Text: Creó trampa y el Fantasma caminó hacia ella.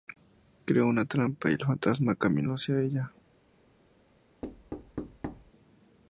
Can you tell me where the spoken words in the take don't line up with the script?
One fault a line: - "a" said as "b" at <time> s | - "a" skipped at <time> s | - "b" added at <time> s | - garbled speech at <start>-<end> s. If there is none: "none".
- "una" added at 0.9 s